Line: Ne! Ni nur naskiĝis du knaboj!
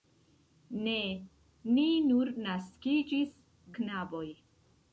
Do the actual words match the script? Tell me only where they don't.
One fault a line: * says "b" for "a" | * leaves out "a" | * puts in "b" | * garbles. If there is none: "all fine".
* leaves out "du"